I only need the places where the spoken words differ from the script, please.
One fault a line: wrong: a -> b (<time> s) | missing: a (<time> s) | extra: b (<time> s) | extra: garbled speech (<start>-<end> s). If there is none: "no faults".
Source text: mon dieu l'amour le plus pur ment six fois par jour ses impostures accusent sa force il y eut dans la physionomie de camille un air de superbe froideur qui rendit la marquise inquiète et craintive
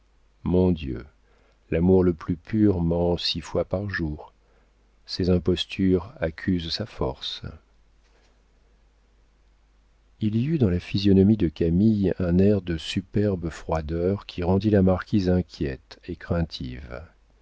no faults